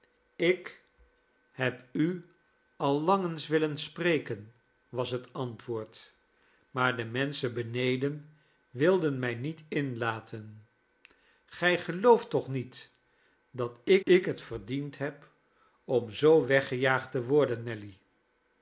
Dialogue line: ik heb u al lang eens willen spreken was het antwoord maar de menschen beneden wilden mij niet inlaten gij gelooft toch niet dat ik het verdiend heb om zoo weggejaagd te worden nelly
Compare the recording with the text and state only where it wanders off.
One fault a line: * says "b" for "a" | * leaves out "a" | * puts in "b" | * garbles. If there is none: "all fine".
* puts in "ik"